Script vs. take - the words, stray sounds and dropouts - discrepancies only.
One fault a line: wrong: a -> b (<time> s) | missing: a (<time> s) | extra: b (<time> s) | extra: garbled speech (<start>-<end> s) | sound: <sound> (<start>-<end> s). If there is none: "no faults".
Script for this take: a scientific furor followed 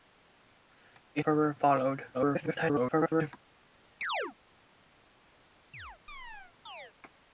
missing: scientific (1.2 s)
extra: garbled speech (2.1-3.3 s)
sound: chirp (4.0-4.3 s)
sound: chirp (5.7-6.9 s)